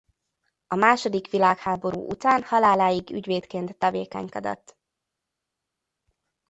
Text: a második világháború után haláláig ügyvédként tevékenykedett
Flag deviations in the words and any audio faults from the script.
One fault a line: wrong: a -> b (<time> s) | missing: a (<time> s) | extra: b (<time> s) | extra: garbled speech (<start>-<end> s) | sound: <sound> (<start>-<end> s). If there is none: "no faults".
no faults